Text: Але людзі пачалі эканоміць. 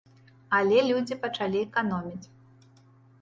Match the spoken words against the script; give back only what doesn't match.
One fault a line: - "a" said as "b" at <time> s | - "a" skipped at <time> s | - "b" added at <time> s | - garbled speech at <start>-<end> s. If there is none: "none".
none